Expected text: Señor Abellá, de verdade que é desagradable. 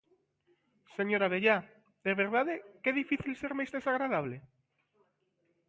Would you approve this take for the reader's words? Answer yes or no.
no